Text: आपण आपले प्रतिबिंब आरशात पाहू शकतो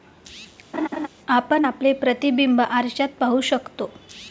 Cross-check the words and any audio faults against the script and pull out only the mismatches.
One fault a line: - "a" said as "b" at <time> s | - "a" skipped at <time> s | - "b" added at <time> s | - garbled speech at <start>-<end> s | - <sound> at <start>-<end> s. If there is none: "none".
- laugh at 0.7-1.1 s